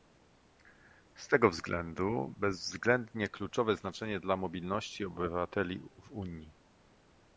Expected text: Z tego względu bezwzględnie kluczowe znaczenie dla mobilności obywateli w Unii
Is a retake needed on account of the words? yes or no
no